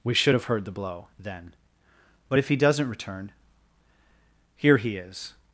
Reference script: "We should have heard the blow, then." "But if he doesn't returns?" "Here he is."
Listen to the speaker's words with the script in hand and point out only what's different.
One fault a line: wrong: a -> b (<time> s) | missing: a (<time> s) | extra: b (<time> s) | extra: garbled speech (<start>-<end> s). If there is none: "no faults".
wrong: returns -> return (2.9 s)